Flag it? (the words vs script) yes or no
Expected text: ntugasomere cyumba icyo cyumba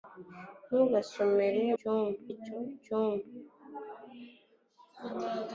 no